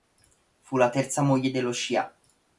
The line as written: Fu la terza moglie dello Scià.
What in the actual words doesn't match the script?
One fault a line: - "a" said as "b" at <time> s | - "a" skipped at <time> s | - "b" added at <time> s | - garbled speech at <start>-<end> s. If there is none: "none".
none